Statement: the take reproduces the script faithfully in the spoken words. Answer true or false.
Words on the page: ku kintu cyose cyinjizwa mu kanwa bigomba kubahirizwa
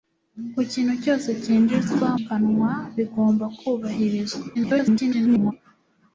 false